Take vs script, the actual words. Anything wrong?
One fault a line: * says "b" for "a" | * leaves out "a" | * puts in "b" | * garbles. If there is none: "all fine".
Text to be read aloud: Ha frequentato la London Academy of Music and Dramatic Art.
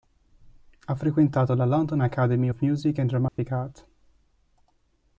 all fine